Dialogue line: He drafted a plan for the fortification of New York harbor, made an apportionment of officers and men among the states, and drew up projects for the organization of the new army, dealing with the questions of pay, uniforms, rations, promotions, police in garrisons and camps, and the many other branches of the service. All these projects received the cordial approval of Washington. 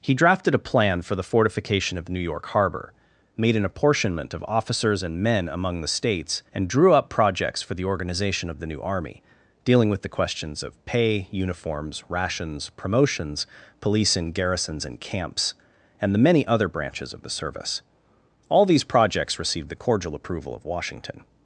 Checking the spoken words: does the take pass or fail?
pass